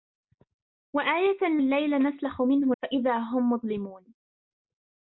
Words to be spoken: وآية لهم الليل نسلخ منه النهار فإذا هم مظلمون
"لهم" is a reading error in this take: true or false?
true